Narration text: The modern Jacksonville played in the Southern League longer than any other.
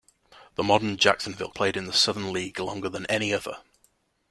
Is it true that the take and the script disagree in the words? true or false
false